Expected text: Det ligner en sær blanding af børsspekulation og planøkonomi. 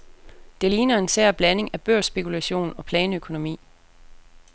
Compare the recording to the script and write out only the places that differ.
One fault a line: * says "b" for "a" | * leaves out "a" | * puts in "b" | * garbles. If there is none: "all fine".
all fine